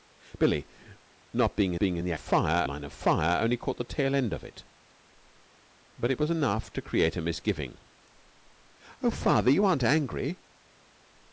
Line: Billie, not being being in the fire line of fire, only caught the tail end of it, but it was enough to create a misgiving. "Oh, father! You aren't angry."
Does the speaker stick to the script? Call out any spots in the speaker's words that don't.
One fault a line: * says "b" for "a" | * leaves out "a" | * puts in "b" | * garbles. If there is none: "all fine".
all fine